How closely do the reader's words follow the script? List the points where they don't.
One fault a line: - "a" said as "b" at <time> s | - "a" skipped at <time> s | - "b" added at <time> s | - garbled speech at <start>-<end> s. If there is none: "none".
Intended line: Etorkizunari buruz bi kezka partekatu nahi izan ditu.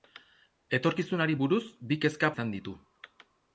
- "partekatu nahi" skipped at 2.3 s